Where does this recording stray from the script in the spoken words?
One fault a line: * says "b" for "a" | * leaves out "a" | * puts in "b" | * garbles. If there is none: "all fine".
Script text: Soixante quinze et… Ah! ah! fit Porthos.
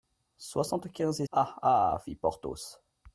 all fine